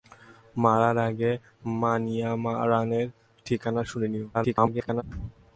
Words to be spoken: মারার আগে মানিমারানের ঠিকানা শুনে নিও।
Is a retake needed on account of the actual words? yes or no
yes